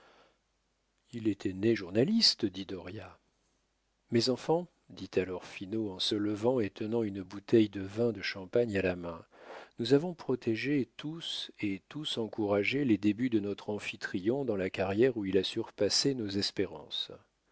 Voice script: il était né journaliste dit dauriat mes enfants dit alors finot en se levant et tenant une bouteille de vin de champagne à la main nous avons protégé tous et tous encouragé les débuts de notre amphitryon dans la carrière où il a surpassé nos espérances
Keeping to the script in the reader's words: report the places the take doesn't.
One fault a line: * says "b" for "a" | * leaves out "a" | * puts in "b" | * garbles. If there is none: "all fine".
all fine